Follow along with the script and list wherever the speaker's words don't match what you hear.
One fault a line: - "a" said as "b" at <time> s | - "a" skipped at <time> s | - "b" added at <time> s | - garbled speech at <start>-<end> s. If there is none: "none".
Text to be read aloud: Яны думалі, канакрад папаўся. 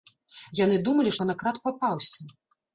none